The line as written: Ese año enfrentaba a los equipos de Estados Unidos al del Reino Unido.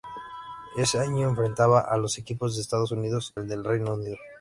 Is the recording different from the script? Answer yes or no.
no